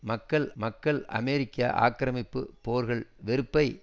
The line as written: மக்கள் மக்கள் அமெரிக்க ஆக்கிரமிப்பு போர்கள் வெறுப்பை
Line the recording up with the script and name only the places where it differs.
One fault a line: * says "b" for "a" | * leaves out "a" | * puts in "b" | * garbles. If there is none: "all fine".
all fine